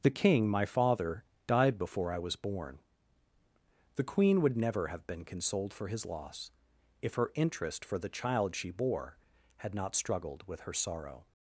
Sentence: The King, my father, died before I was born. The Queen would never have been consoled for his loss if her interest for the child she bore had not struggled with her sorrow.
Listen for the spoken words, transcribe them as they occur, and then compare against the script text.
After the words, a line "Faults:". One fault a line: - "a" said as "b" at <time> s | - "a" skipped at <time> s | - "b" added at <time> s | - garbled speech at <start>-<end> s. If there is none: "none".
The King, my father, died before I was born. The Queen would never have been consoled for his loss if her interest for the child she bore had not struggled with her sorrow.
Faults:
none